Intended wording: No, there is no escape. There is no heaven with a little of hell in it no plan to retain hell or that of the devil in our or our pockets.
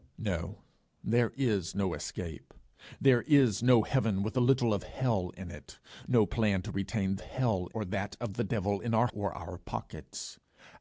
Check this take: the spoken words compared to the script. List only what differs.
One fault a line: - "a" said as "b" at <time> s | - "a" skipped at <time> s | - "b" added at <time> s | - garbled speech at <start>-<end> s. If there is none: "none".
none